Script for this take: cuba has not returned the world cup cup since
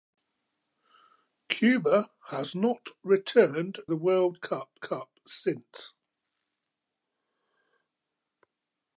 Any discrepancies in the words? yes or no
no